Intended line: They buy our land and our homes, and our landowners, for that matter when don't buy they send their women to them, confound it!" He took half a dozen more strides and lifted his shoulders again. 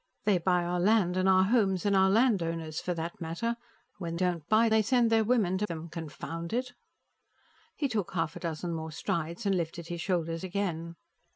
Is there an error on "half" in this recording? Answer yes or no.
no